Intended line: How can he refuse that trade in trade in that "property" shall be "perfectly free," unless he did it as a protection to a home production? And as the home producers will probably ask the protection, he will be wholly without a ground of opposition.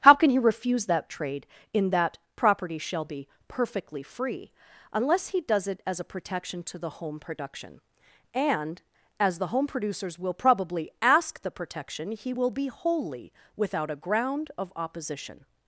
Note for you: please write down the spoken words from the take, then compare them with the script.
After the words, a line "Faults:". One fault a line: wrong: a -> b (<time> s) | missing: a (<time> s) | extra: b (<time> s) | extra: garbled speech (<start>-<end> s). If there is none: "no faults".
How can he refuse that trade in that "property" shall be "perfectly free," unless he does it as a protection to the home production? And as the home producers will probably ask the protection, he will be wholly without a ground of opposition.
Faults:
missing: trade in (1.9 s)
wrong: did -> does (5.4 s)
wrong: a -> the (6.8 s)